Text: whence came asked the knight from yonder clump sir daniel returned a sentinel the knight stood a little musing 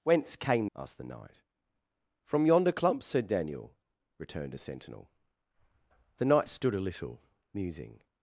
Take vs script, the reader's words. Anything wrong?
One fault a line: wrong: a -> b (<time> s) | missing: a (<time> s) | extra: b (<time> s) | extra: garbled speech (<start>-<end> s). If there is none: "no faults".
no faults